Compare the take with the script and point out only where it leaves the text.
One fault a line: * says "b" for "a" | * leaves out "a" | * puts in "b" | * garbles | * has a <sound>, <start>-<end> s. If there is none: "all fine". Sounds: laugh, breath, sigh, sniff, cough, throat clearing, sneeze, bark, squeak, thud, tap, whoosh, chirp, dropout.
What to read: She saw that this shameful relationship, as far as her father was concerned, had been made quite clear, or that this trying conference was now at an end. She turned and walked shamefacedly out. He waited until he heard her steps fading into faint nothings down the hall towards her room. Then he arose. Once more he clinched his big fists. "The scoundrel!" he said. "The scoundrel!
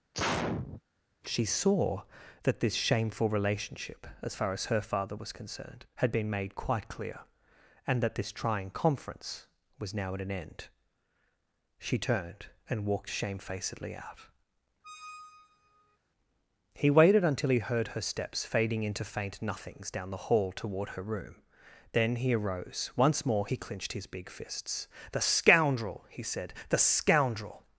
* has a sneeze, 0.1-0.8 s
* says "and" for "or"
* has a squeak, 14.8-16.0 s
* says "toward" for "towards"